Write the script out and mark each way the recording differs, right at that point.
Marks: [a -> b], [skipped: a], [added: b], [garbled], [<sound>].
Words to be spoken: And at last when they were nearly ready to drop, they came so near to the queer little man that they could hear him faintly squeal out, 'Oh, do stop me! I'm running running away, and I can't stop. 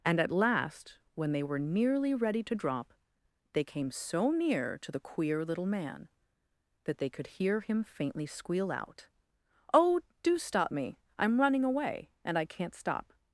And at last when they were nearly ready to drop, they came so near to the queer little man that they could hear him faintly squeal out, 'Oh, do stop me! I'm running [skipped: running] away, and I can't stop.